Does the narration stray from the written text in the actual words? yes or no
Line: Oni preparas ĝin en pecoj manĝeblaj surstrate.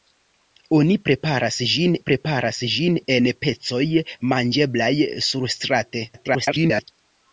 yes